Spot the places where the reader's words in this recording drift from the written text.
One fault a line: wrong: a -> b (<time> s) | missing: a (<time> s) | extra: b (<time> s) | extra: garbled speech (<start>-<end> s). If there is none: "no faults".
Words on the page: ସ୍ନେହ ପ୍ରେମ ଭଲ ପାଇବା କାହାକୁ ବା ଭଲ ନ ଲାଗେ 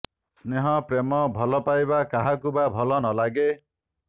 no faults